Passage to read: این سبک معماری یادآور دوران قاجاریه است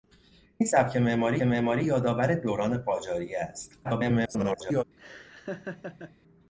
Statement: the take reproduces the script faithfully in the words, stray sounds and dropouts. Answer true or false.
false